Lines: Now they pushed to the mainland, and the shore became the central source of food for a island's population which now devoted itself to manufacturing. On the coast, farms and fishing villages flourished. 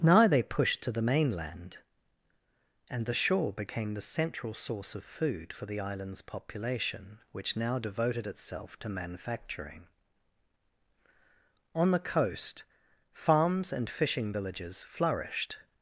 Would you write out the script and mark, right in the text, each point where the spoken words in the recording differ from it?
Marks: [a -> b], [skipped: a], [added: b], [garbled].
Now they pushed to the mainland, and the shore became the central source of food for [a -> the] island's population which now devoted itself to manufacturing. On the coast, farms and fishing villages flourished.